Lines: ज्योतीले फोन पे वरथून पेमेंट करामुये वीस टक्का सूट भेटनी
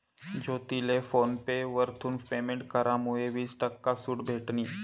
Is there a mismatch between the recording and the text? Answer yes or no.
no